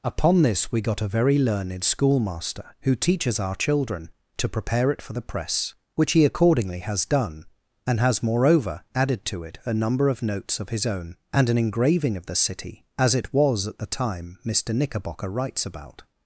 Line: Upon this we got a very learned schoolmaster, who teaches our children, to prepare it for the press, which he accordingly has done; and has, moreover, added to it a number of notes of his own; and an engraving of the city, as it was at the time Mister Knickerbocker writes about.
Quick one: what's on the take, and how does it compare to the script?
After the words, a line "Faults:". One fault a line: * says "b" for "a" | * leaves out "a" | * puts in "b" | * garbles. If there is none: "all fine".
Upon this we got a very learned schoolmaster, who teaches our children, to prepare it for the press, which he accordingly has done; and has, moreover, added to it a number of notes of his own; and an engraving of the city, as it was at the time Mister Knickerbocker writes about.
Faults:
all fine